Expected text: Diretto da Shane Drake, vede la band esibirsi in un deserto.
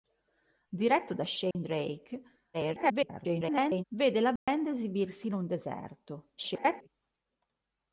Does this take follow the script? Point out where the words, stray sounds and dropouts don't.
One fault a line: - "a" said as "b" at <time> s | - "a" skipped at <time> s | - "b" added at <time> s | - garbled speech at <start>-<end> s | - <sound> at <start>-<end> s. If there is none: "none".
- dropout at 1.5-1.6 s
- garbled speech at 2.5-3.8 s
- dropout at 4.4-4.5 s
- garbled speech at 6.4-6.9 s